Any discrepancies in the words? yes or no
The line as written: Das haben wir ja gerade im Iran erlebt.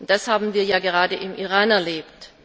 no